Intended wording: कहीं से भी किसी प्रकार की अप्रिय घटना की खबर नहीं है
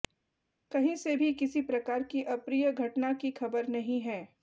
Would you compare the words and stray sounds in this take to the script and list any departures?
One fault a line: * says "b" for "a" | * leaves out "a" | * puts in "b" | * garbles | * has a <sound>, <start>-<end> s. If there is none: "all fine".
all fine